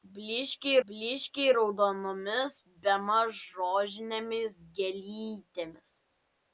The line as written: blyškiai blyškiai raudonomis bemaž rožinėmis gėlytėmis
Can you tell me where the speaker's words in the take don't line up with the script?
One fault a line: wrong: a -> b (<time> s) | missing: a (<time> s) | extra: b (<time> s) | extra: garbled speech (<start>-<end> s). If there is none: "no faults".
no faults